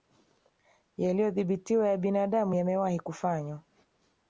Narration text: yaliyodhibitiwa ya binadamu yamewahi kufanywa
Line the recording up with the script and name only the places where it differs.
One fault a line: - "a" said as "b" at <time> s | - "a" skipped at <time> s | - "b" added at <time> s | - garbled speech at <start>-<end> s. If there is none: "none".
none